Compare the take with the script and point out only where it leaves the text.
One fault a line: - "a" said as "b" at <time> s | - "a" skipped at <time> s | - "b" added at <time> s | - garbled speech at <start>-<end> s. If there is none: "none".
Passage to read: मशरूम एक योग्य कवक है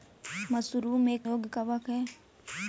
none